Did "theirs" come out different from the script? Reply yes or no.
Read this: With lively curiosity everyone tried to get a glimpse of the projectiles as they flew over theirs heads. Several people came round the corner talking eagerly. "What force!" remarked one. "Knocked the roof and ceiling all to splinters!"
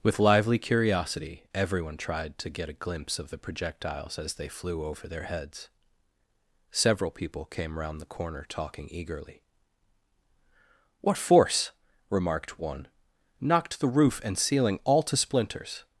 yes